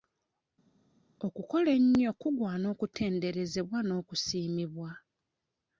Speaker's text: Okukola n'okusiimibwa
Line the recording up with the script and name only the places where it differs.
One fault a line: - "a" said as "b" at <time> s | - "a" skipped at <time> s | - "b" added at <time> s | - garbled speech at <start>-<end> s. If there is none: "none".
- "ennyo kugwana okutenderezebwa" added at 1.8 s